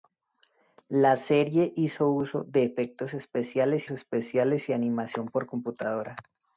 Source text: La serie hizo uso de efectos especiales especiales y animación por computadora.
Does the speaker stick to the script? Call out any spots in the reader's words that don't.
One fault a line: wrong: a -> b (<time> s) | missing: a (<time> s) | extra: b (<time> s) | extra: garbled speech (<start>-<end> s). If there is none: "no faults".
no faults